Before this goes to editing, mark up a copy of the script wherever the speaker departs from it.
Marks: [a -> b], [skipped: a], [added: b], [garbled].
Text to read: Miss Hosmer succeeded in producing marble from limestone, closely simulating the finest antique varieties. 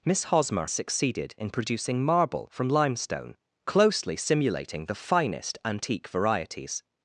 Miss Hosmer succeeded in producing marble from limestone, closely simulating the finest antique varieties.